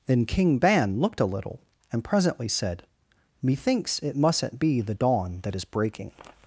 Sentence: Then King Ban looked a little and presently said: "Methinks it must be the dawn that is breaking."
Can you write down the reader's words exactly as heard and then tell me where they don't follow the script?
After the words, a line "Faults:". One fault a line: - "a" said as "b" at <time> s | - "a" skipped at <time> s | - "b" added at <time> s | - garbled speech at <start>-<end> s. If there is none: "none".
Then King Ban looked a little and presently said: "Methinks it mustn't be the dawn that is breaking."
Faults:
- "must" said as "mustn't" at 4.2 s